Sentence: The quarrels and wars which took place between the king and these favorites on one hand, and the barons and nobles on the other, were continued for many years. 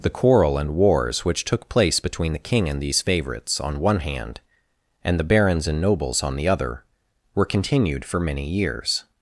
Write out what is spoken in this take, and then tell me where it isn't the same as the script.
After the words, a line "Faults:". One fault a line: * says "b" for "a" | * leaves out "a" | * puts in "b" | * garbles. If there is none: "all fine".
The quarrel and wars which took place between the king and these favorites on one hand, and the barons and nobles on the other, were continued for many years.
Faults:
* says "quarrel" for "quarrels"